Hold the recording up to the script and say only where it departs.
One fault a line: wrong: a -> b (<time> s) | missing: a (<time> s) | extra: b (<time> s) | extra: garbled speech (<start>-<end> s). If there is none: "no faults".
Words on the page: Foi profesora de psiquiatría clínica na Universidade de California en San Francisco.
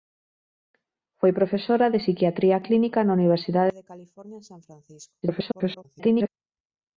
extra: garbled speech (5.2-6.3 s)